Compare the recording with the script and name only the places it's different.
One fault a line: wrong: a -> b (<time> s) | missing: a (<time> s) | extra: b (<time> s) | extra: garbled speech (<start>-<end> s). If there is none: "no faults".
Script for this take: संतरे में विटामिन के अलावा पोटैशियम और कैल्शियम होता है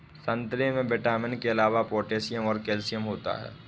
no faults